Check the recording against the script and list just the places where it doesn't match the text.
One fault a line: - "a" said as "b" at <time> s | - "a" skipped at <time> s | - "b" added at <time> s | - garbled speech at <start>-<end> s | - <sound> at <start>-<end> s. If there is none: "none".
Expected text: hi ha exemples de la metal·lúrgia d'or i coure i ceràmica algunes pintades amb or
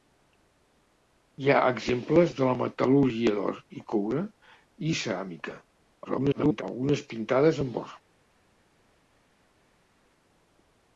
- garbled speech at 6.0-6.6 s